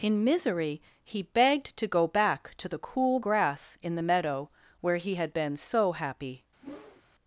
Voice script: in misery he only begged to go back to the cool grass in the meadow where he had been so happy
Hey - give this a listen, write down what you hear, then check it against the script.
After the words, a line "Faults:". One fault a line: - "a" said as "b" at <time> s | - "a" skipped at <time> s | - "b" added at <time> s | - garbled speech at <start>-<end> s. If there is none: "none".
in misery he begged to go back to the cool grass in the meadow where he had been so happy
Faults:
- "only" skipped at 1.2 s